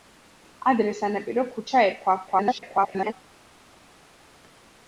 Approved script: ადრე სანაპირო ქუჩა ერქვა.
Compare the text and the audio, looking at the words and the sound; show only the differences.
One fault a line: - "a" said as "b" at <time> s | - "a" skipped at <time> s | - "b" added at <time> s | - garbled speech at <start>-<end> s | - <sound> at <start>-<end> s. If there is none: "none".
- garbled speech at 2.3-3.1 s